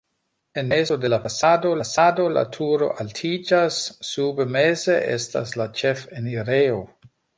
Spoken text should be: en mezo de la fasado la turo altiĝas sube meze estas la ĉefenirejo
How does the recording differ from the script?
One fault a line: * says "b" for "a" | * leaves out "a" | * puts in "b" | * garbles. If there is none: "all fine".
* puts in "fasado"